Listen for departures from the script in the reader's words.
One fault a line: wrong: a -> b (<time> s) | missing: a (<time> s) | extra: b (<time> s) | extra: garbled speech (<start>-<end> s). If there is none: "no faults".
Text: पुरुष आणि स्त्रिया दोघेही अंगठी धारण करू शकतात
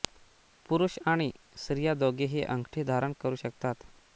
no faults